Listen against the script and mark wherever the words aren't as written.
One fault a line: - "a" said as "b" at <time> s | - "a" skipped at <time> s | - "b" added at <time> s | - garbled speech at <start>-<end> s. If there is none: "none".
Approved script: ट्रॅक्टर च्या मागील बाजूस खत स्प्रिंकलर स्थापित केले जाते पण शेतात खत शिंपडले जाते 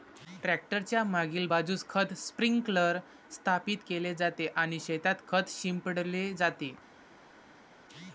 - "पण" said as "आणि" at 4.6 s